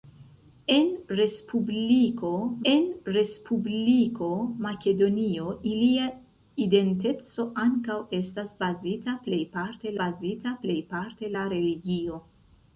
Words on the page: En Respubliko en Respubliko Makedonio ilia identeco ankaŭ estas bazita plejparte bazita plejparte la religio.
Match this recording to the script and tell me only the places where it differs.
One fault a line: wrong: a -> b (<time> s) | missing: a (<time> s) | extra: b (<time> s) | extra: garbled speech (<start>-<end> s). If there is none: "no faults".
no faults